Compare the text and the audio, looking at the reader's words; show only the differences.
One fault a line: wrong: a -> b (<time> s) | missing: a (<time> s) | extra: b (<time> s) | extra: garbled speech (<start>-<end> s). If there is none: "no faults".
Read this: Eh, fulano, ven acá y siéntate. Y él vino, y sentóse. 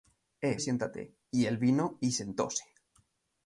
missing: fulano ven acá (0.6 s)